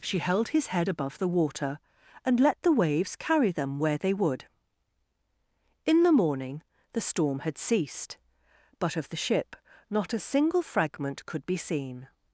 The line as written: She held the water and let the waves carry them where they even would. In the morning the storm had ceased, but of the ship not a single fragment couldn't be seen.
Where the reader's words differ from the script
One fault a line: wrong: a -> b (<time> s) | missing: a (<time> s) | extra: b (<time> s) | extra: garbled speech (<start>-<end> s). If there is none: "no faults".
extra: his head above (0.5 s)
missing: even (4.1 s)
wrong: couldn't -> could (11.3 s)